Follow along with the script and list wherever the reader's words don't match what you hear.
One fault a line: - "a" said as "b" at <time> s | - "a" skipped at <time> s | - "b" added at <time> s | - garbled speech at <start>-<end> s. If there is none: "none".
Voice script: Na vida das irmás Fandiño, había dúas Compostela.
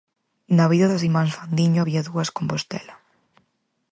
none